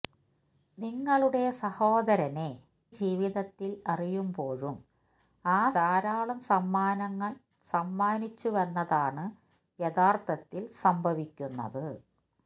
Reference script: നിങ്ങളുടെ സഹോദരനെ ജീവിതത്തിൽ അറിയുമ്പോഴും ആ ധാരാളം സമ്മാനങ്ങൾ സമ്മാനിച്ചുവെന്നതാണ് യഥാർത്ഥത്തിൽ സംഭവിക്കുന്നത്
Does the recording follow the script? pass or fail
pass